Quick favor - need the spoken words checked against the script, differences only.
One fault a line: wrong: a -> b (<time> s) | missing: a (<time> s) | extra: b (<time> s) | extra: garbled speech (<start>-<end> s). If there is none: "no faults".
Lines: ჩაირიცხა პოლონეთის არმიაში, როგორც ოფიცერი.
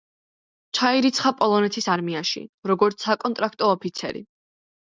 extra: საკონტრაქტო (3.1 s)